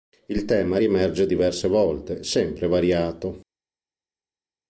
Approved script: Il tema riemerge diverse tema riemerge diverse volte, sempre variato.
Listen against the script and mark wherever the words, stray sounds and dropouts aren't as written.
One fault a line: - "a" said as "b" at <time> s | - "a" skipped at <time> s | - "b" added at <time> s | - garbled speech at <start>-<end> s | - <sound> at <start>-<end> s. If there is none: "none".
- "tema riemerge diverse" skipped at 1.7 s